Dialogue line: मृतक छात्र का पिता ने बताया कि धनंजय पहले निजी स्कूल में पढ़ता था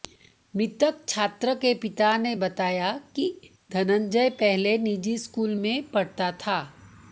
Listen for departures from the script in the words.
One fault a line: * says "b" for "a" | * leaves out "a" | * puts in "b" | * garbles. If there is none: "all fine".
* says "के" for "का"